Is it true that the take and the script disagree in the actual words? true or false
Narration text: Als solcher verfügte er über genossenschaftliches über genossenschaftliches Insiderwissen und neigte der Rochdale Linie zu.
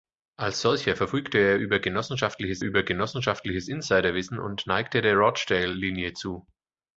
false